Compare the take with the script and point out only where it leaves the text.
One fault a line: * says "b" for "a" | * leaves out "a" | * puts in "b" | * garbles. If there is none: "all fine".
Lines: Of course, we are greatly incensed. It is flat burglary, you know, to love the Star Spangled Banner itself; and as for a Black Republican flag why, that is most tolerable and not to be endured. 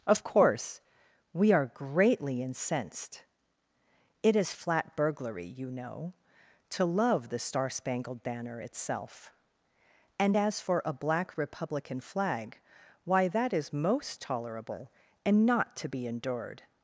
all fine